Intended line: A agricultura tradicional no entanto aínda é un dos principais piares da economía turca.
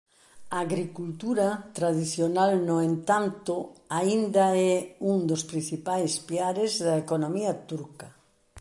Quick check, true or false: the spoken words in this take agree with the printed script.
true